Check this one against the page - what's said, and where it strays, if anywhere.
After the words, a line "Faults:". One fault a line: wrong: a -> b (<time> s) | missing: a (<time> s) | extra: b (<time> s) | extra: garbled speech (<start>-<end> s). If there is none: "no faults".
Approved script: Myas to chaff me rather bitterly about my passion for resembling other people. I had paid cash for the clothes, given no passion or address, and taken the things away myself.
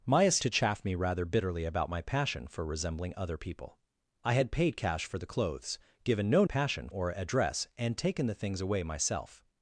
Myas to chaff me rather bitterly about my passion for resembling other people. I had paid cash for the clothes, given no passion or address, and taken the things away myself.
Faults:
no faults